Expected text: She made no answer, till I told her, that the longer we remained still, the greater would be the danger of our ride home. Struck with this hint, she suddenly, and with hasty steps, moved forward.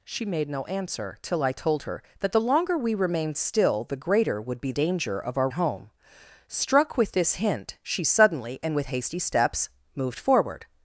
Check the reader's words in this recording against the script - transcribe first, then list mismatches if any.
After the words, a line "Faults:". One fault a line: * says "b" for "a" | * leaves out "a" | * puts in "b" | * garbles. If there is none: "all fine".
She made no answer, till I told her, that the longer we remained still, the greater would be danger of our home. Struck with this hint, she suddenly, and with hasty steps, moved forward.
Faults:
* leaves out "the"
* leaves out "ride"